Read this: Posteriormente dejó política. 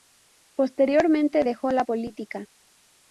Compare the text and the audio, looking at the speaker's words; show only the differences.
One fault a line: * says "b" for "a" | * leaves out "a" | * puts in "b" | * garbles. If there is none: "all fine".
* puts in "la"